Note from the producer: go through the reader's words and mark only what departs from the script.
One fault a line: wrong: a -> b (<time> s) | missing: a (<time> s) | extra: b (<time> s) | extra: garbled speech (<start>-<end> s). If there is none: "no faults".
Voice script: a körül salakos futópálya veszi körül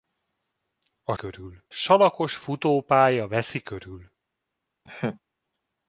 no faults